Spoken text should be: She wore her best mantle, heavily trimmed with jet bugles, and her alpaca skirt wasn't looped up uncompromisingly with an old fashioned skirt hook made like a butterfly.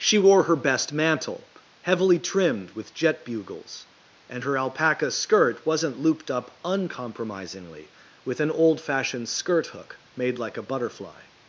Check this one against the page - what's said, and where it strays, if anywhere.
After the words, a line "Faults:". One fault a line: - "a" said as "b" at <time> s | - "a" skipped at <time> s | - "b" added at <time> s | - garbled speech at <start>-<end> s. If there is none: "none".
She wore her best mantle, heavily trimmed with jet bugles, and her alpaca skirt wasn't looped up uncompromisingly with an old fashioned skirt hook made like a butterfly.
Faults:
none